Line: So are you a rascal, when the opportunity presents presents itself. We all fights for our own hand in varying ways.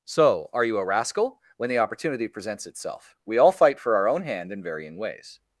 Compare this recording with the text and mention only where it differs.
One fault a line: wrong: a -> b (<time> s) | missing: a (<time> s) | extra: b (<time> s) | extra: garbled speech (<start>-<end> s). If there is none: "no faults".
missing: presents (2.6 s)
wrong: fights -> fight (3.5 s)